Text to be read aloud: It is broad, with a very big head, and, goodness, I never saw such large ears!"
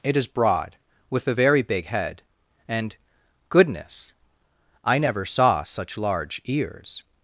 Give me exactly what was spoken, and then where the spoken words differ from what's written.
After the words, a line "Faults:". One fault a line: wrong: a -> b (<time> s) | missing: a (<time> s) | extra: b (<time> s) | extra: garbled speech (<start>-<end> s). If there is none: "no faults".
It is broad, with a very big head, and, goodness, I never saw such large ears!"
Faults:
no faults